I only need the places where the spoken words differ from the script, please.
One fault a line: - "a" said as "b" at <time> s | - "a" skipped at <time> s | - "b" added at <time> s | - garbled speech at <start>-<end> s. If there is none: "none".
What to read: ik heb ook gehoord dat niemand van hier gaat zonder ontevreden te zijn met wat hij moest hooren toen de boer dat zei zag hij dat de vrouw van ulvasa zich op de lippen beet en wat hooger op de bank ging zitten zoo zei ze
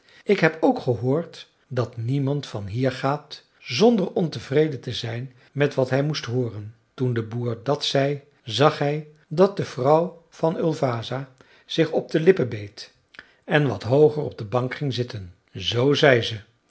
none